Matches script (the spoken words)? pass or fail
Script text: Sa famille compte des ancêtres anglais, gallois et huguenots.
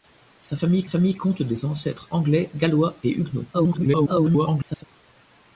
fail